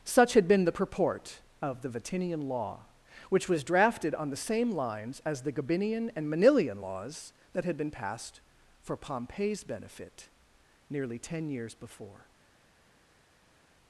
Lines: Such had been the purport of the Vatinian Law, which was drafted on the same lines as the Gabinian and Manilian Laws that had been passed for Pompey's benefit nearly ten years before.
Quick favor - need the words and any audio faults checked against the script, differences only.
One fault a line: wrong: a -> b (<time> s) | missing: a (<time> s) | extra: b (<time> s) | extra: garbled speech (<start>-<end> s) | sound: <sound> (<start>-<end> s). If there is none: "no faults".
no faults